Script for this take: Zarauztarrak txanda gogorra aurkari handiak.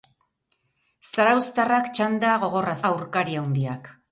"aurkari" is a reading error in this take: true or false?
false